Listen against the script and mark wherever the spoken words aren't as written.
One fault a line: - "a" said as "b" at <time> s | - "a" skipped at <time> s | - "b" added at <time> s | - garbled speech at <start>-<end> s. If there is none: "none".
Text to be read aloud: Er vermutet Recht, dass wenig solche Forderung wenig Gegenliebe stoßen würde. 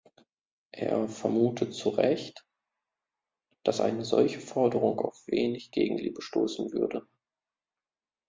- "zu" added at 1.8 s
- "wenig" said as "eine" at 3.8 s
- "auf" added at 5.0 s